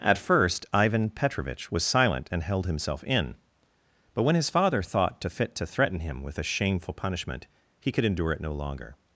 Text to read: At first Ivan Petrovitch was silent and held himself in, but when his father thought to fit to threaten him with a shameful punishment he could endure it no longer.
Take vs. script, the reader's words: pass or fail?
pass